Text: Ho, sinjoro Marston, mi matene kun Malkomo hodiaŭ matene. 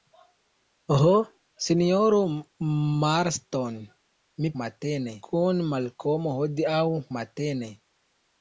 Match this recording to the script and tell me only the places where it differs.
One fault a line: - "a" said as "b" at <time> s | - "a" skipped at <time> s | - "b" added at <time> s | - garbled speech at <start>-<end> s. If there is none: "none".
none